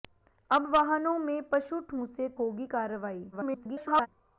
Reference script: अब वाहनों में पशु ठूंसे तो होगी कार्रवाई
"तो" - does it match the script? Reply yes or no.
no